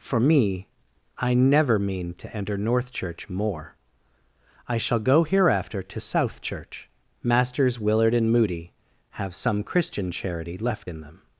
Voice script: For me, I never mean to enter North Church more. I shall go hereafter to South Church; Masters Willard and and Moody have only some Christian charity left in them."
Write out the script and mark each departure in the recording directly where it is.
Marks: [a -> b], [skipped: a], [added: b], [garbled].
For me, I never mean to enter North Church more. I shall go hereafter to South Church; Masters Willard and [skipped: and] Moody have [skipped: only] some Christian charity left in them."